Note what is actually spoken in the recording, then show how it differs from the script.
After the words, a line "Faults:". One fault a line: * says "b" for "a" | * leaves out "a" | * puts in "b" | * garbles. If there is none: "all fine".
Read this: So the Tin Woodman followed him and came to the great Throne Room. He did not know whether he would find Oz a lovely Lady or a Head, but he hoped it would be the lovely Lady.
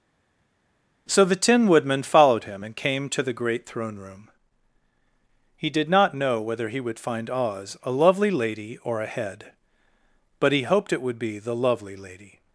So the Tin Woodman followed him and came to the great Throne Room. He did not know whether he would find Oz a lovely Lady or a Head, but he hoped it would be the lovely Lady.
Faults:
all fine